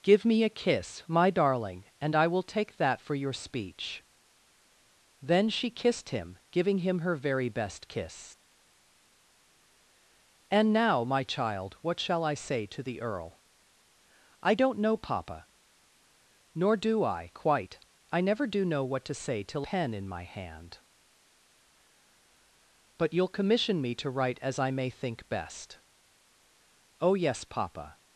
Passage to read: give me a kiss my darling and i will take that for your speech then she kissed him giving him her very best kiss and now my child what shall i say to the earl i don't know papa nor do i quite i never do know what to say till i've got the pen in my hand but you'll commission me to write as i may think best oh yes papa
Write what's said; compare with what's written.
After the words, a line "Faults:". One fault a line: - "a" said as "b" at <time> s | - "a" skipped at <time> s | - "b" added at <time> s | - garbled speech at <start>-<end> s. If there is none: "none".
give me a kiss my darling and i will take that for your speech then she kissed him giving him her very best kiss and now my child what shall i say to the earl i don't know papa nor do i quite i never do know what to say till pen in my hand but you'll commission me to write as i may think best oh yes papa
Faults:
- "i've got the" skipped at 19.7 s